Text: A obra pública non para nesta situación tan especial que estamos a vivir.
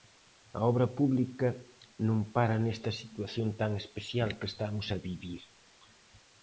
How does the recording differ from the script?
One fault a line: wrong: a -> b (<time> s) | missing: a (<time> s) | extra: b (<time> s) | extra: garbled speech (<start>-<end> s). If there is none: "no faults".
no faults